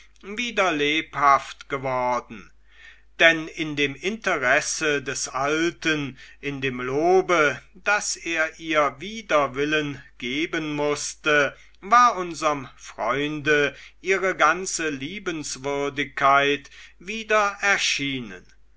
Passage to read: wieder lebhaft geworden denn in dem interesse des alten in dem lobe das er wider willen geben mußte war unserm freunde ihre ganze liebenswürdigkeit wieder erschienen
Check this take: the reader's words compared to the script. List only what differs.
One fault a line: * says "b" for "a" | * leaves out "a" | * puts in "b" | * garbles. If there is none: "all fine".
* puts in "ihr"